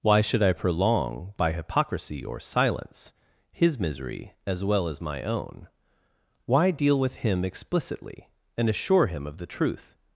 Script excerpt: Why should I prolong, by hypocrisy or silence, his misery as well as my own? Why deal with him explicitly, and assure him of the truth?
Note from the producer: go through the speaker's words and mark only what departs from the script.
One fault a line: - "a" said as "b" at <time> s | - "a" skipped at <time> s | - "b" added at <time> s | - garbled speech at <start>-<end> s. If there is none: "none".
none